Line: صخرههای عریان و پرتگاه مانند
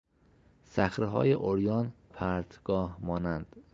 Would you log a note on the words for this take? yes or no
yes